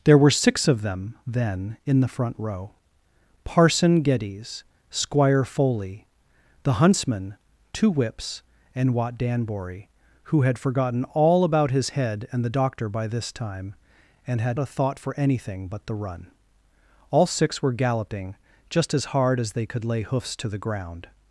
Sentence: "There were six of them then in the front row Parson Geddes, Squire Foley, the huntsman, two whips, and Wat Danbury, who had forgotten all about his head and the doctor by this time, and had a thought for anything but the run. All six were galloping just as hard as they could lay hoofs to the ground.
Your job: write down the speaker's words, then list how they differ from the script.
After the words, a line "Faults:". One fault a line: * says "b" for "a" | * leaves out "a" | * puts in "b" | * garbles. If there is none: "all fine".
"There were six of them then in the front row Parson Geddes, Squire Foley, the huntsman, two whips, and Wat Danbury, who had forgotten all about his head and the doctor by this time, and had a thought for anything but the run. All six were galloping just as hard as they could lay hoofs to the ground.
Faults:
all fine